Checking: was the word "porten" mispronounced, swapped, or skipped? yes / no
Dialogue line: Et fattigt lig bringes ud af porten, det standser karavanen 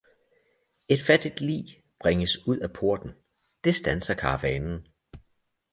no